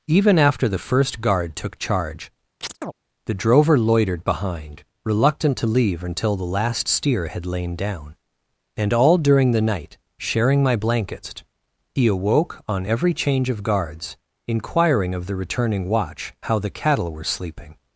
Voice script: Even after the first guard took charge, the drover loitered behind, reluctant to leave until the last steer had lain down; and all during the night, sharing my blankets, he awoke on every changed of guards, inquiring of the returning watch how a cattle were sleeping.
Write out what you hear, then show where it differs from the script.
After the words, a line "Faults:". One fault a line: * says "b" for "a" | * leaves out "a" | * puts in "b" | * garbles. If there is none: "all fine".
Even after the first guard took charge, the drover loitered behind, reluctant to leave until the last steer had lain down; and all during the night, sharing my blankets, he awoke on every change of guards, inquiring of the returning watch how the cattle were sleeping.
Faults:
* says "change" for "changed"
* says "the" for "a"